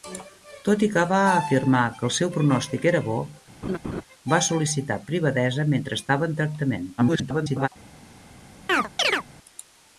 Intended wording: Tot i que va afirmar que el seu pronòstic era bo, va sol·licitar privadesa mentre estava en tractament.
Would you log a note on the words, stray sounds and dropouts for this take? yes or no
yes